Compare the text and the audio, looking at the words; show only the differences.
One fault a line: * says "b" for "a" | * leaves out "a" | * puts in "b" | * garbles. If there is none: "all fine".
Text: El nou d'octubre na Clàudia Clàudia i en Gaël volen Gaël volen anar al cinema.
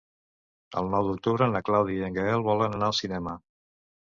* leaves out "Clàudia"
* leaves out "Gaël volen"